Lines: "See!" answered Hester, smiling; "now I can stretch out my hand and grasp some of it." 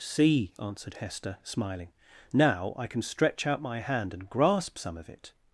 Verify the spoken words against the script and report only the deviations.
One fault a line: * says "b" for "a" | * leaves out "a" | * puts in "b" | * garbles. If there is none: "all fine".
all fine